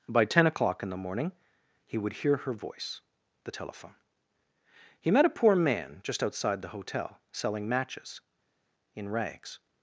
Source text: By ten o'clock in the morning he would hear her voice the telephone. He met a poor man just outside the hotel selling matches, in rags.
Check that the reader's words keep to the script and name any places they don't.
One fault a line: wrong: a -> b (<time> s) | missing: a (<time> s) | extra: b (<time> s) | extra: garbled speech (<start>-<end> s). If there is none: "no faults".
no faults